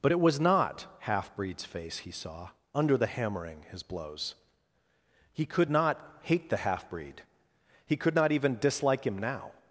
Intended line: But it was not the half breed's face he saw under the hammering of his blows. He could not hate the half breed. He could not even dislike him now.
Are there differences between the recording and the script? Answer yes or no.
yes